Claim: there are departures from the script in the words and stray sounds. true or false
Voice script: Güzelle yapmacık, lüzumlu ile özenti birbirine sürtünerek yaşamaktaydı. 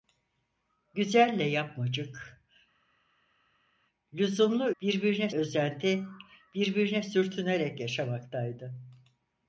true